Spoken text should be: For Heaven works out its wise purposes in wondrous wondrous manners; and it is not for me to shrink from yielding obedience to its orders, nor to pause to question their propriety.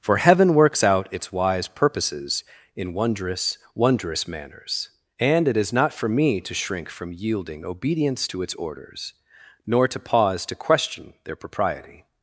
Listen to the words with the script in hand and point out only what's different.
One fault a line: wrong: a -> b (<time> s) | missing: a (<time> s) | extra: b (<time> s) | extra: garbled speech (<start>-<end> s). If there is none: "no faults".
no faults